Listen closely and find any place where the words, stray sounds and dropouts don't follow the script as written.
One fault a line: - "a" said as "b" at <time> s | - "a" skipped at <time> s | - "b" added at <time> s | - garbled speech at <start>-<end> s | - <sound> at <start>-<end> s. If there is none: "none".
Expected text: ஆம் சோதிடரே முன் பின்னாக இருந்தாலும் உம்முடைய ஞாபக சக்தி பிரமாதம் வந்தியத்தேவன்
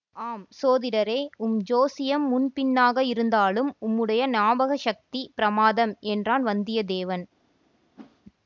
- "உம் ஜோசியம்" added at 1.4 s
- "என்றான்" added at 6.1 s
- whoosh at 8.0-8.2 s